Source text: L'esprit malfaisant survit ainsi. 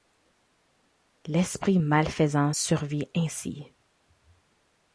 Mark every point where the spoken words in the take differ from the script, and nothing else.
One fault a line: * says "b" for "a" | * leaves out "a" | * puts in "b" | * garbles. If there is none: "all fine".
all fine